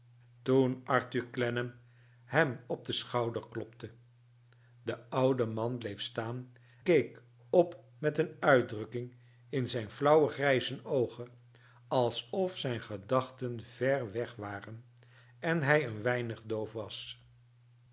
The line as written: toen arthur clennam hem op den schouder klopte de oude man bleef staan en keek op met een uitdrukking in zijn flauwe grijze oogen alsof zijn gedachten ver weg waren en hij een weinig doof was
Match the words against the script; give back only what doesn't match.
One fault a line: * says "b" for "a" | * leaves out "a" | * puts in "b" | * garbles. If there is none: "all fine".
* leaves out "en"